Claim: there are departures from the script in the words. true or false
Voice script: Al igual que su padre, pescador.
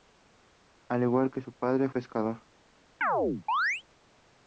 false